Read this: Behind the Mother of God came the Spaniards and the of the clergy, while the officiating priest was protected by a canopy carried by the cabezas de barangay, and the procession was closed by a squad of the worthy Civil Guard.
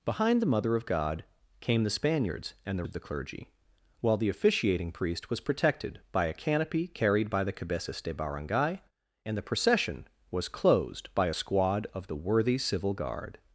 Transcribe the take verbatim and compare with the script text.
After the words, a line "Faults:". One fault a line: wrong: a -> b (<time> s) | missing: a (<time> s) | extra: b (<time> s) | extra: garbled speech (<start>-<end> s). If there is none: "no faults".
Behind the Mother of God came the Spaniards and the of the clergy, while the officiating priest was protected by a canopy carried by the cabezas de barangay, and the procession was closed by a squad of the worthy Civil Guard.
Faults:
no faults